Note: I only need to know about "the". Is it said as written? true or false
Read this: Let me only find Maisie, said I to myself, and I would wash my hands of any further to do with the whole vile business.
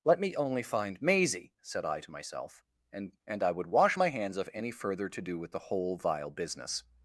true